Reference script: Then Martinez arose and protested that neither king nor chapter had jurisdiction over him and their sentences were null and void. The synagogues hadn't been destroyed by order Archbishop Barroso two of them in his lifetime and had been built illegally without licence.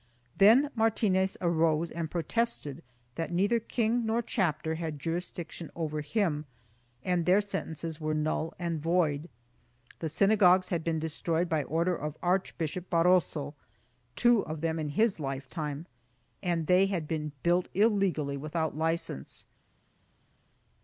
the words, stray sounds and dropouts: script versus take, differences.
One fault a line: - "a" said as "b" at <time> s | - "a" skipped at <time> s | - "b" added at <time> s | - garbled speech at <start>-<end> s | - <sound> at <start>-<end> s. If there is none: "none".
- "hadn't" said as "had" at 10.7 s
- "of" added at 12.0 s
- "they" added at 16.7 s